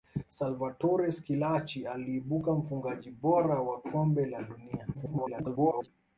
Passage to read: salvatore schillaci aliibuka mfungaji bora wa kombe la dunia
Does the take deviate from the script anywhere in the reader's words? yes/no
yes